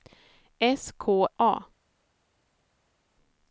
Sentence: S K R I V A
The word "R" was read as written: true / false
false